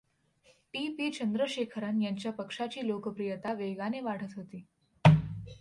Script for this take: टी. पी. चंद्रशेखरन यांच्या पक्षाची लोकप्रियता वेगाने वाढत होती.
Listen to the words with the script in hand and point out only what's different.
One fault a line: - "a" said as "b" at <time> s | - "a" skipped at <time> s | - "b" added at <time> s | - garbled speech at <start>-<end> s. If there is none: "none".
none